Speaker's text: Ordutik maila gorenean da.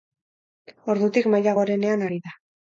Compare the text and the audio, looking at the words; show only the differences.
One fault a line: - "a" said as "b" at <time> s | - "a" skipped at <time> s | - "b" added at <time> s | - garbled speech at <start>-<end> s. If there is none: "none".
- "ari" added at 2.1 s